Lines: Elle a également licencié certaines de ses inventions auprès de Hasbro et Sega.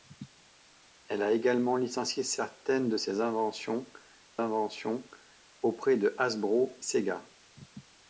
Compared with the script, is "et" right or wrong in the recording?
wrong